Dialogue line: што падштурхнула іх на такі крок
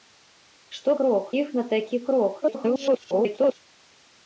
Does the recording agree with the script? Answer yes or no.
no